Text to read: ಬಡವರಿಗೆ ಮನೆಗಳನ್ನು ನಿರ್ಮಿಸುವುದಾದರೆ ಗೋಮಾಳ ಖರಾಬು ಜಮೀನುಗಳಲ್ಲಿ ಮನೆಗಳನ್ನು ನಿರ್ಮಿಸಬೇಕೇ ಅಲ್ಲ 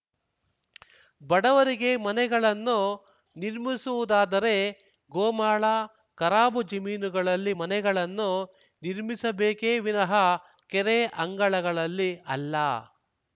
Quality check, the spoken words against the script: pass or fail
fail